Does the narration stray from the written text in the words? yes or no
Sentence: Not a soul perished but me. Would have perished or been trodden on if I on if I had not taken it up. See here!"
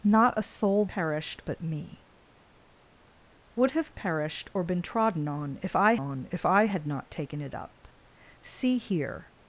no